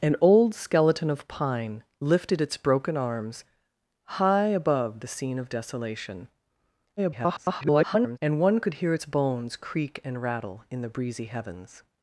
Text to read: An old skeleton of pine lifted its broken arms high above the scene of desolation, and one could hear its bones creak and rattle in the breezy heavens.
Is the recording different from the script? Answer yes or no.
yes